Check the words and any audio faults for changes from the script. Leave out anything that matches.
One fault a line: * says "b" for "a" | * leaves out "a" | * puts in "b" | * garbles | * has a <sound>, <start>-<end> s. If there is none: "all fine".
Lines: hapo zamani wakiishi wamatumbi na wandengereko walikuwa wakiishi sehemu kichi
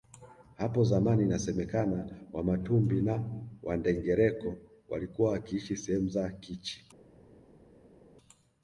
* says "inasemekana" for "wakiishi"
* puts in "za"